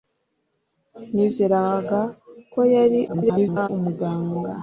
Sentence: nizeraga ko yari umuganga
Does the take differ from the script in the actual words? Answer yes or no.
yes